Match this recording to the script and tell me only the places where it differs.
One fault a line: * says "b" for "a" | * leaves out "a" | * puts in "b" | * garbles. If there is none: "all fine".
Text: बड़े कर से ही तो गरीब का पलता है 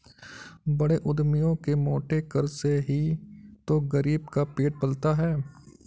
* puts in "उद्यमियों के मोटे"
* puts in "पेट"